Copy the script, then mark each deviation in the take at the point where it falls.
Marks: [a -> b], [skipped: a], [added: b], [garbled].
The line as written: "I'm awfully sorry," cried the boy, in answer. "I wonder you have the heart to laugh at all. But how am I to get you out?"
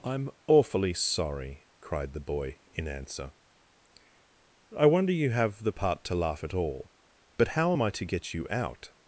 "I'm awfully sorry," cried the boy, in answer. "I wonder you have the [heart -> part] to laugh at all. But how am I to get you out?"